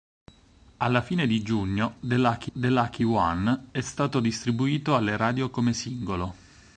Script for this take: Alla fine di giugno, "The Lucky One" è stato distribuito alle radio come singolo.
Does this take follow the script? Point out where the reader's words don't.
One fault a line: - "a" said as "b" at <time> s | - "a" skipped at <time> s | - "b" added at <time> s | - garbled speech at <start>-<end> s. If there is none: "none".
- "the Lucky" added at 2.5 s